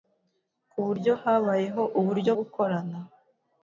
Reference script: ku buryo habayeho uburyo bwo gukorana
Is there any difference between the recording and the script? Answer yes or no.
yes